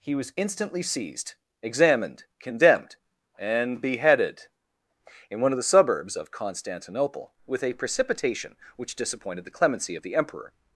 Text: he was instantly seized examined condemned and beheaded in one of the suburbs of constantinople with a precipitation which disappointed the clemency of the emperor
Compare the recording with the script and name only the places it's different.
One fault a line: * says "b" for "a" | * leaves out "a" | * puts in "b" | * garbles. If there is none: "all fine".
all fine